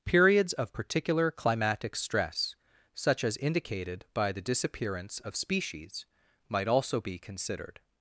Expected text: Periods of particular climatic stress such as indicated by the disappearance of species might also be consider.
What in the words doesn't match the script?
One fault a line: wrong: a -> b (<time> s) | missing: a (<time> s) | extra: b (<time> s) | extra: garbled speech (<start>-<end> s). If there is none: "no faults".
wrong: consider -> considered (7.2 s)